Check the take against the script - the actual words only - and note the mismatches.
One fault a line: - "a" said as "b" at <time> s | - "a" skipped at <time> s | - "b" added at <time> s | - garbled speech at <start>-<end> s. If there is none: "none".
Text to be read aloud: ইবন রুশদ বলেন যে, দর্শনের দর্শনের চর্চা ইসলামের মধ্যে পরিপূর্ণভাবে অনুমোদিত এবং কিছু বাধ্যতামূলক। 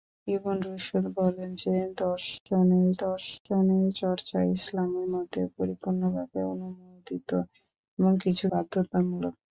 none